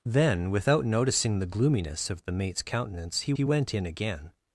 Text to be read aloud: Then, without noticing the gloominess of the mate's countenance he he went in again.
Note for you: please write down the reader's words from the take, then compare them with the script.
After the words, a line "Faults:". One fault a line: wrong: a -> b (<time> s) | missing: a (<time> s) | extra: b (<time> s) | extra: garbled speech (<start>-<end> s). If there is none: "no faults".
Then, without noticing the gloominess of the mate's countenance he he went in again.
Faults:
no faults